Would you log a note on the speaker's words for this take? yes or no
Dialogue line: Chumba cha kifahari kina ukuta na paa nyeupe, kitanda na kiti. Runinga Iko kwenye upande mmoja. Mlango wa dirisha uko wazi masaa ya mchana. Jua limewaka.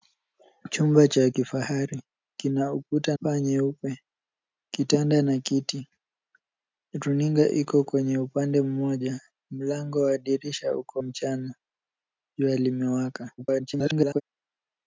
yes